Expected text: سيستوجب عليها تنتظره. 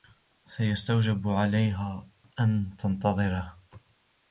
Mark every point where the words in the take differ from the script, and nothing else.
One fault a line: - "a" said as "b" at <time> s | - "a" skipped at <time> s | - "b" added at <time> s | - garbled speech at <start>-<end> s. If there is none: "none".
- "أن" added at 2.4 s